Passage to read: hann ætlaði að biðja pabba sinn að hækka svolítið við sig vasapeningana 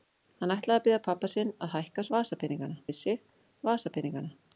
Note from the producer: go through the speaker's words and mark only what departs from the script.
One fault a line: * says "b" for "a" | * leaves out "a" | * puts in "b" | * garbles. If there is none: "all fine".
* says "vasapeningana" for "svolítið"